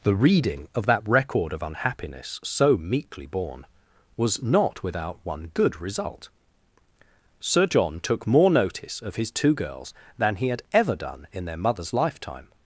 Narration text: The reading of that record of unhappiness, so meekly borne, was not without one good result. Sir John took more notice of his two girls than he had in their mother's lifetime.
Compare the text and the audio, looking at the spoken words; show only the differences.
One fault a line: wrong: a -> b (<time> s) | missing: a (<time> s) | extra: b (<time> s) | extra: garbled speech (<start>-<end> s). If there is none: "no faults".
extra: ever done (10.7 s)